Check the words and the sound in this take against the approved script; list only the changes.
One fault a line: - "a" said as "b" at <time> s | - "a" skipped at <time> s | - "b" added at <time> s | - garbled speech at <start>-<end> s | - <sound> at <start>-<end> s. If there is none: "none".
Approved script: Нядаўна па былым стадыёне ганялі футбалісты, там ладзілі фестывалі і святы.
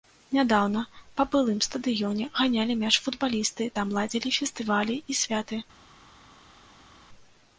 - "мяч" added at 2.8 s